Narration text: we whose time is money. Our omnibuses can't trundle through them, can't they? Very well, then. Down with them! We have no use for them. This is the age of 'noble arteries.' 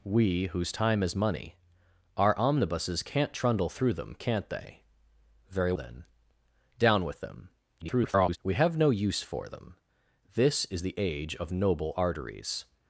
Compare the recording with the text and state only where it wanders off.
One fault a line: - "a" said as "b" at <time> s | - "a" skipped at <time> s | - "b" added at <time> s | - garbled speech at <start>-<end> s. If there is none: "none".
- "well" skipped at 5.7 s
- garbled speech at 7.8-8.4 s